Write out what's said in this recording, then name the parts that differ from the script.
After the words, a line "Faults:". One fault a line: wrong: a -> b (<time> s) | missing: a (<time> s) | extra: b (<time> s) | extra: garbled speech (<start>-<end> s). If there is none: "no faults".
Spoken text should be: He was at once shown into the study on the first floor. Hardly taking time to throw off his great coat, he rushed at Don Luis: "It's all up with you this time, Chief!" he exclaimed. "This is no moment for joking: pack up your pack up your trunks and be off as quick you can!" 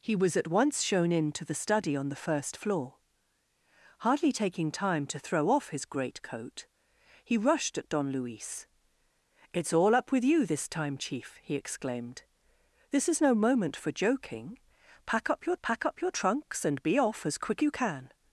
He was at once shown into the study on the first floor. Hardly taking time to throw off his great coat, he rushed at Don Luis: "It's all up with you this time, Chief!" he exclaimed. "This is no moment for joking: pack up your pack up your trunks and be off as quick you can!"
Faults:
no faults